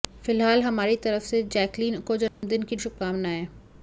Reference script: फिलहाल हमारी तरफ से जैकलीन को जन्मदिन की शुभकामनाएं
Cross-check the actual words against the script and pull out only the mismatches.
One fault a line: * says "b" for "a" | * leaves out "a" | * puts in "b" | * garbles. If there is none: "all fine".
all fine